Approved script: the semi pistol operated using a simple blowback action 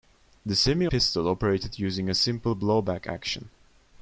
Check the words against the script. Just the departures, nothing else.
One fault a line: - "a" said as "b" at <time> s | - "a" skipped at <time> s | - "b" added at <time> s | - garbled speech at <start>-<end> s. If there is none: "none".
none